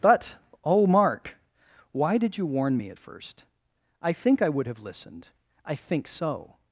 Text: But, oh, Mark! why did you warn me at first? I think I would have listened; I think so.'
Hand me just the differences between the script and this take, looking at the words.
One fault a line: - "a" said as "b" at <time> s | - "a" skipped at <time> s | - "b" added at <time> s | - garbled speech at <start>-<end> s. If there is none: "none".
none